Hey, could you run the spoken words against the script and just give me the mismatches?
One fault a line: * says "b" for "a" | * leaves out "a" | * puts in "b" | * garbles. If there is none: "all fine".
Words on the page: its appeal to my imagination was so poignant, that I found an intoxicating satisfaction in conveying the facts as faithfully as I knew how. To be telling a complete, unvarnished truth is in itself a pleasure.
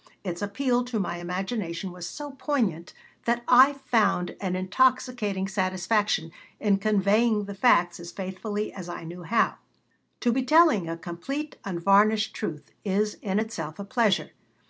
all fine